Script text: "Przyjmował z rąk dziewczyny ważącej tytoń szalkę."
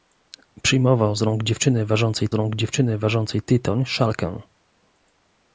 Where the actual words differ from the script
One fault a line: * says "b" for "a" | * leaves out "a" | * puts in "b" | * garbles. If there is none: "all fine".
* puts in "rąk dziewczyny ważącej"